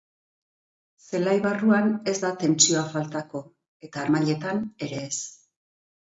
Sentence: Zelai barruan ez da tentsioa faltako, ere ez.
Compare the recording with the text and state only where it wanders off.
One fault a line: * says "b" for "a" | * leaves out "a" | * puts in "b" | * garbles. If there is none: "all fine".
* puts in "eta harmailetan"